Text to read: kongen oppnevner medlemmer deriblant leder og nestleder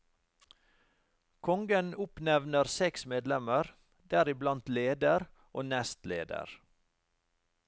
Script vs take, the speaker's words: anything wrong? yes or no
yes